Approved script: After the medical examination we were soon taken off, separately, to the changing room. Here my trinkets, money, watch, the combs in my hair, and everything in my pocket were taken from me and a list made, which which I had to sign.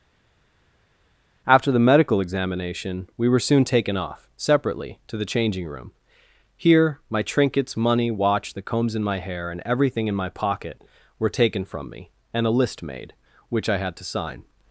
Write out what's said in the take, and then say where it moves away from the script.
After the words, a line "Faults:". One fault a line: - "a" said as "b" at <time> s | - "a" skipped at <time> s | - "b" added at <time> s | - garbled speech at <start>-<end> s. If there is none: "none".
After the medical examination we were soon taken off, separately, to the changing room. Here my trinkets, money, watch, the combs in my hair, and everything in my pocket were taken from me and a list made, which I had to sign.
Faults:
- "which" skipped at 13.7 s